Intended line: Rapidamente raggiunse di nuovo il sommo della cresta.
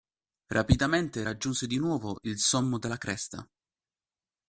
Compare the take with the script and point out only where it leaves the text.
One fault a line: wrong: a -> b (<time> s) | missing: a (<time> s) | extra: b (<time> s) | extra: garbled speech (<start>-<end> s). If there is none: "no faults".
no faults